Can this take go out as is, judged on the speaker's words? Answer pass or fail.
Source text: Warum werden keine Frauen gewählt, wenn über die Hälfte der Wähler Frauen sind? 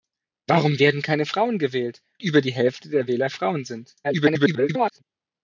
fail